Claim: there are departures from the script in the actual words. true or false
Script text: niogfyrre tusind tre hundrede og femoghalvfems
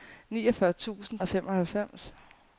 true